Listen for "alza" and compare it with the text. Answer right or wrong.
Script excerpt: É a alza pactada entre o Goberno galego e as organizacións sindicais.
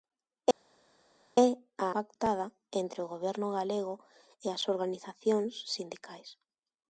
wrong